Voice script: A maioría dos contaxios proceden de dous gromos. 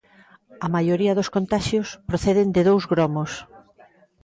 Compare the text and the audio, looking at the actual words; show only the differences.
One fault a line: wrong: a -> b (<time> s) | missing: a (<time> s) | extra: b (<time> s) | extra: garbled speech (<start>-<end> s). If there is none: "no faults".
no faults